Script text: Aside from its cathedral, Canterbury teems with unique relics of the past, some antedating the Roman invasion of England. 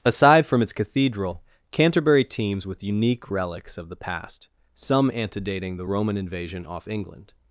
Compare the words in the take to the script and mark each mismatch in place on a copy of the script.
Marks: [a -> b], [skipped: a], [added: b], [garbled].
Aside from its cathedral, Canterbury teems with unique relics of the past, some antedating the Roman invasion [of -> off] England.